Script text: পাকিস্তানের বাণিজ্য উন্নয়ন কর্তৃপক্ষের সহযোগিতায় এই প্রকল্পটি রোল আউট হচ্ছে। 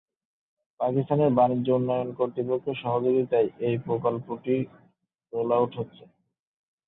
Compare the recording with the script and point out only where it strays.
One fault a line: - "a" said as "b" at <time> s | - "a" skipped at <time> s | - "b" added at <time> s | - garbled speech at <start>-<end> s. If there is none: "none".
none